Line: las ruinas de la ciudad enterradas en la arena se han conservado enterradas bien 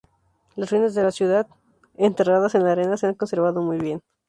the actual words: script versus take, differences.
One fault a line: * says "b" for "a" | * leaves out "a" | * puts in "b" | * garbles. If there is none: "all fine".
* says "muy" for "enterradas"